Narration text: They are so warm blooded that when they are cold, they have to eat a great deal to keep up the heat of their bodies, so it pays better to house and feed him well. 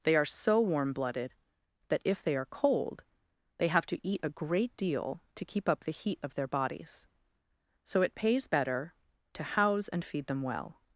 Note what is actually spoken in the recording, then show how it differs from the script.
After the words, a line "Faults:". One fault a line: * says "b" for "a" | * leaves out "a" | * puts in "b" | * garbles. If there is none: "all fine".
They are so warm blooded that if they are cold, they have to eat a great deal to keep up the heat of their bodies, so it pays better to house and feed them well.
Faults:
* says "if" for "when"
* says "them" for "him"